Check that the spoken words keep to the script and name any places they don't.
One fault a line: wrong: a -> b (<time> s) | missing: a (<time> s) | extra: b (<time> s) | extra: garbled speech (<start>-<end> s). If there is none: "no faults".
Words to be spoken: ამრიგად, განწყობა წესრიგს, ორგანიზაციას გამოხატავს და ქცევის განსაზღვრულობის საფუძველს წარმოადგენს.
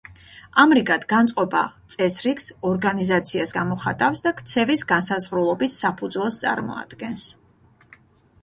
no faults